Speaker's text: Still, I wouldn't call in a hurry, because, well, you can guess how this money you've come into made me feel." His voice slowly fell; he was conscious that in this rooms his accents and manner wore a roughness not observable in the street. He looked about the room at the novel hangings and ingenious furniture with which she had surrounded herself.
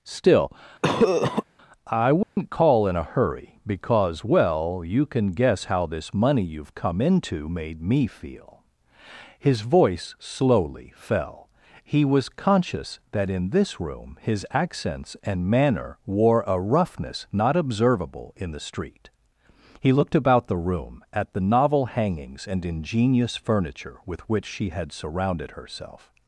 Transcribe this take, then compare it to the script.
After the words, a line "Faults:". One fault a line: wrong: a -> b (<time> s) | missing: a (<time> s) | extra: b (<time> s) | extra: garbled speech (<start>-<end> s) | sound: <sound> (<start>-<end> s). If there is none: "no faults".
Still, I wouldn't call in a hurry, because, well, you can guess how this money you've come into made me feel." His voice slowly fell; he was conscious that in this room his accents and manner wore a roughness not observable in the street. He looked about the room at the novel hangings and ingenious furniture with which she had surrounded herself.
Faults:
sound: cough (0.8-1.4 s)
sound: dropout (2.2-2.4 s)
wrong: rooms -> room (13.8 s)